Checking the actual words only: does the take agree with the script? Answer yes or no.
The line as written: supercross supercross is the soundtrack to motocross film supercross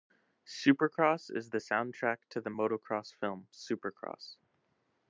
no